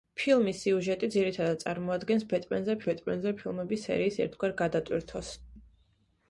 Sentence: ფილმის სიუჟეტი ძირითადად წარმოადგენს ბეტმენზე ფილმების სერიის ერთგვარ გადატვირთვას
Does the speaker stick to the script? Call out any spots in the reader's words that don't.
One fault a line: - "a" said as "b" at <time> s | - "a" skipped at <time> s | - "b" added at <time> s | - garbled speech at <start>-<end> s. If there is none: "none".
- "ბეტმენზე" added at 2.9 s